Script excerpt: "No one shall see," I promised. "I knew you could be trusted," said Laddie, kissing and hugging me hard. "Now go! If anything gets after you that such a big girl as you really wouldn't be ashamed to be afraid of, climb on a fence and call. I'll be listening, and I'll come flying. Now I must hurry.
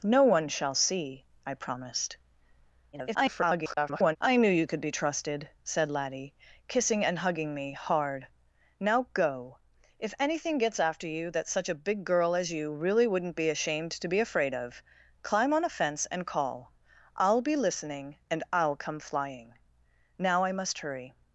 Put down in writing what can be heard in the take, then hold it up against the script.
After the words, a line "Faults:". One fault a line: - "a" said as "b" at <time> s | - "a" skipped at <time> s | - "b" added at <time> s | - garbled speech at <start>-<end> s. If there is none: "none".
"No one shall see," I promised. [garbled] "I knew you could be trusted," said Laddie, kissing and hugging me hard. "Now go! If anything gets after you that such a big girl as you really wouldn't be ashamed to be afraid of, climb on a fence and call. I'll be listening, and I'll come flying. Now I must hurry.
Faults:
- garbled speech at 2.9-4.2 s